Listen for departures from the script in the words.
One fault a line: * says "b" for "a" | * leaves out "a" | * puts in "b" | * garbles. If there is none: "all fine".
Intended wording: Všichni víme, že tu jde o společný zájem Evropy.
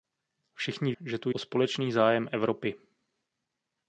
* leaves out "víme"
* leaves out "jde"